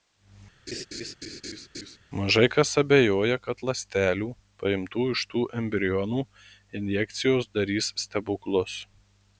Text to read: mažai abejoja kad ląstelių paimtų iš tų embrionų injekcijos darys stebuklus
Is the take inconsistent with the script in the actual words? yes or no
yes